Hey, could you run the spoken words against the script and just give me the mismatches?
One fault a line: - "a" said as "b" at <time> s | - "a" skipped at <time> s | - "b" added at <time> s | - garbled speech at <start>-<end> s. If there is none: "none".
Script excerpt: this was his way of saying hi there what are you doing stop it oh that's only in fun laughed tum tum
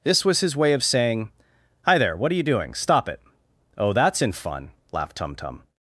- "only" skipped at 4.2 s